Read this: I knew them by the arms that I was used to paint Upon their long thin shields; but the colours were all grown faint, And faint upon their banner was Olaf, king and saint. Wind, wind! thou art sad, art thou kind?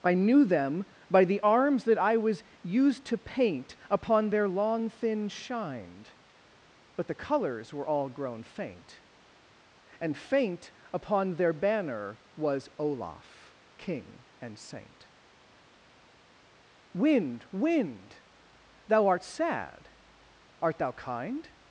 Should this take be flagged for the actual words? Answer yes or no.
yes